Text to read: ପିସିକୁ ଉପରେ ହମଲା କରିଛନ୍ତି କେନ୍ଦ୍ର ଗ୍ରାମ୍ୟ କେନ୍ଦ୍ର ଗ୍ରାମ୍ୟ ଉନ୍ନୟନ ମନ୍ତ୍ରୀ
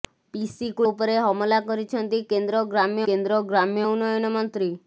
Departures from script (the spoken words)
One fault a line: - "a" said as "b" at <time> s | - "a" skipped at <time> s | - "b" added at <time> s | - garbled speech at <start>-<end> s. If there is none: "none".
none